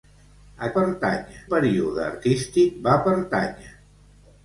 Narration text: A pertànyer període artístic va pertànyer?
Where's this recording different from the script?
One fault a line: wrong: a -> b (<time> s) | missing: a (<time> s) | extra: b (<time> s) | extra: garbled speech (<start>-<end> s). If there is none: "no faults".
no faults